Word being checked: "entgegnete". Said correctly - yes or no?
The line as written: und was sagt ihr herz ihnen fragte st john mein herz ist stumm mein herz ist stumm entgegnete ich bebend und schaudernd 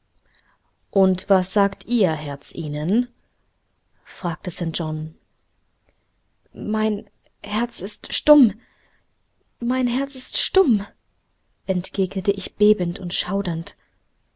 yes